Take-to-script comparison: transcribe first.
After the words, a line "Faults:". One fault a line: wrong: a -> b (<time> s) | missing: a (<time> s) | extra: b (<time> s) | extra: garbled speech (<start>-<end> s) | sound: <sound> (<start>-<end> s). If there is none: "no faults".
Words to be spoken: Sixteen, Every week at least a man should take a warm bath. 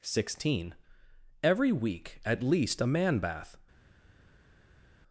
Sixteen, Every week at least a man bath.
Faults:
missing: should take a warm (3.2 s)